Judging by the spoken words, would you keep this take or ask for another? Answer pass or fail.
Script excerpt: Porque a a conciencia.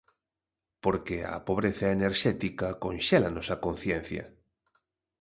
fail